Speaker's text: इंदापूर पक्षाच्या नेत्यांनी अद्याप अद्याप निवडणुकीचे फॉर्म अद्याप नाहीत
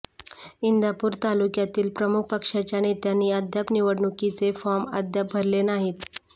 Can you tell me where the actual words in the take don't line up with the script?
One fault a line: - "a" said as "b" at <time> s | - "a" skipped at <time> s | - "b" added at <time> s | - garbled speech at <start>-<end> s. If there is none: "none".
- "तालुक्यातील प्रमुख" added at 1.2 s
- "अद्याप" skipped at 3.7 s
- "भरले" added at 5.3 s